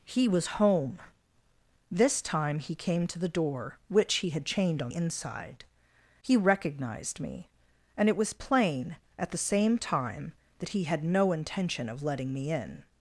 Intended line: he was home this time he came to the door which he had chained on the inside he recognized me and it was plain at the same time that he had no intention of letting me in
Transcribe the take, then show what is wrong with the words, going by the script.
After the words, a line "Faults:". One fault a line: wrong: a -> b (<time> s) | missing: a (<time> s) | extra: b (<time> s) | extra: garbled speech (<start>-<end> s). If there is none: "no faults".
he was home this time he came to the door which he had chained on inside he recognized me and it was plain at the same time that he had no intention of letting me in
Faults:
missing: the (4.9 s)